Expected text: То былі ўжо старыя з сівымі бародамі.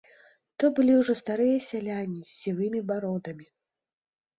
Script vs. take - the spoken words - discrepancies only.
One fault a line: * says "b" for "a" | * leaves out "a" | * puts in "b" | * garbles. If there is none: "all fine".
* puts in "сяляне"